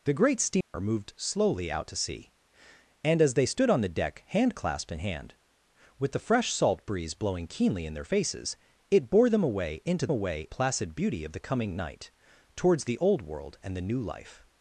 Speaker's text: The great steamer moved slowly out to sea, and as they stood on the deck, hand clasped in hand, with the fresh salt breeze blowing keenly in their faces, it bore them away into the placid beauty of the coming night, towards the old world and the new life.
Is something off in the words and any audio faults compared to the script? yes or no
yes